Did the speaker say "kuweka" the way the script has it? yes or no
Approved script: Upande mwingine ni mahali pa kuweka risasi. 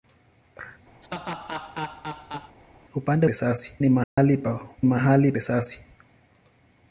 no